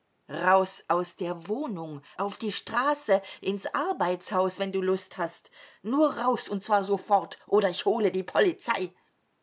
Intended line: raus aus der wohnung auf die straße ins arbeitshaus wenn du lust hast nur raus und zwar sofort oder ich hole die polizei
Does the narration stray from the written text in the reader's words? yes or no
no